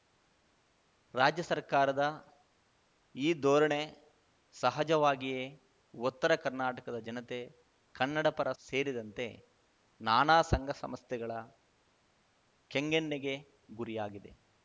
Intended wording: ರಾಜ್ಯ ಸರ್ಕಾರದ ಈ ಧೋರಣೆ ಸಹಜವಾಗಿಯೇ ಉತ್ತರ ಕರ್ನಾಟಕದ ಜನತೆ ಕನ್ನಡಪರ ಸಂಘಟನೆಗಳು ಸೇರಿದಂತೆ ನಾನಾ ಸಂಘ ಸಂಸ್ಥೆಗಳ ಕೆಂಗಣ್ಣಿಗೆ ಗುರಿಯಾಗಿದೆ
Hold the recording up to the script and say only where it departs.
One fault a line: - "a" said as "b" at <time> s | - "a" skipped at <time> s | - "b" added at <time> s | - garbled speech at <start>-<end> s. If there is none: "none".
- "ಸಂಘಟನೆಗಳು" skipped at 8.5 s